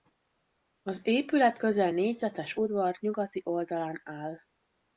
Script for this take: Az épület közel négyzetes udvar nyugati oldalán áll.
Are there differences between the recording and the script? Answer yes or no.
no